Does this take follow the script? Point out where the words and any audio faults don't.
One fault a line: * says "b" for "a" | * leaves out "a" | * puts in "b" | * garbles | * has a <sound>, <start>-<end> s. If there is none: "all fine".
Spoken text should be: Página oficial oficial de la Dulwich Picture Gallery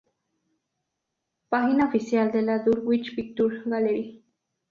* leaves out "oficial"